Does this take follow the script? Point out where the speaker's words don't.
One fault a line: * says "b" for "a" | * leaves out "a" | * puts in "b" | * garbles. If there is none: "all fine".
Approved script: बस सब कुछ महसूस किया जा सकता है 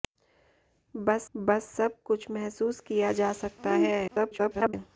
* puts in "बस"
* garbles